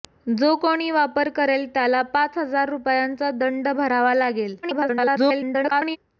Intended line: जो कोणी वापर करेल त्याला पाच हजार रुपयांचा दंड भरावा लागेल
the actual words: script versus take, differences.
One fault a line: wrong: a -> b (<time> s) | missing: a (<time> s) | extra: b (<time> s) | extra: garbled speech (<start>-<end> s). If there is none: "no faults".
extra: garbled speech (4.6-6.0 s)